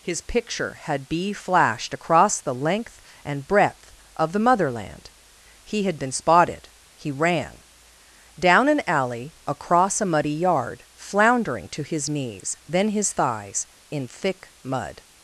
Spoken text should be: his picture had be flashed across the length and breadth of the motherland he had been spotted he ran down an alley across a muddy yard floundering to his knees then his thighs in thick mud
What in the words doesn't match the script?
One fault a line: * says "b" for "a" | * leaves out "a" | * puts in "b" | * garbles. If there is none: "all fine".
all fine